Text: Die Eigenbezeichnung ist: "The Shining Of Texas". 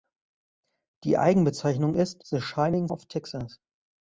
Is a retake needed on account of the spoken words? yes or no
no